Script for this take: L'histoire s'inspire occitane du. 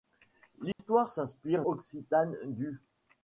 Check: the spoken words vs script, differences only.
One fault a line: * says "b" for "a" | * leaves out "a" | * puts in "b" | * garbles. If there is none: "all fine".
all fine